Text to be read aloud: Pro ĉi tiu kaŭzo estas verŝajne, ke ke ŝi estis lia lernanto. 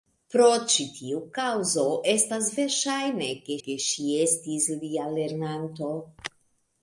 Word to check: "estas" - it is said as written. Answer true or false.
true